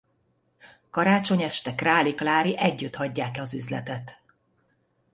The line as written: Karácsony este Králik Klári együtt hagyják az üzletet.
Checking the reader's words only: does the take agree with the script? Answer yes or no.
yes